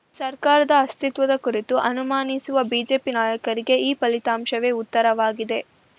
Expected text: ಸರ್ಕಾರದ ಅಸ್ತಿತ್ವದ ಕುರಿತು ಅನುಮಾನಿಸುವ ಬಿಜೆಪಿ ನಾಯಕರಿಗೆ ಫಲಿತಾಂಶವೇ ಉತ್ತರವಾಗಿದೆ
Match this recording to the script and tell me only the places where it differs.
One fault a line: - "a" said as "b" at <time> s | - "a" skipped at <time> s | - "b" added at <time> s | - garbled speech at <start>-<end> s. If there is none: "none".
- "ಈ" added at 3.8 s